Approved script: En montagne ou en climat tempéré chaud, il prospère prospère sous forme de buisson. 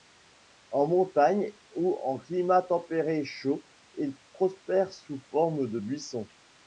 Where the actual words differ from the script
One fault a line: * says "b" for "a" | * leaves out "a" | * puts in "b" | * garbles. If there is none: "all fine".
* leaves out "prospère"